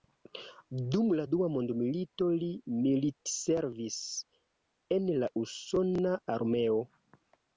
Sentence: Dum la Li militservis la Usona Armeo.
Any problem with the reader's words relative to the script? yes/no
yes